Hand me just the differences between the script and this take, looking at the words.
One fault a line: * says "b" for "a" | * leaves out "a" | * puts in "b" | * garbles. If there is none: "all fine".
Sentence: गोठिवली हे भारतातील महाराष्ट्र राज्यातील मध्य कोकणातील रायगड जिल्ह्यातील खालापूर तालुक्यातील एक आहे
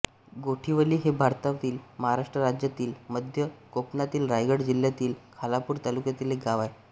* puts in "गाव"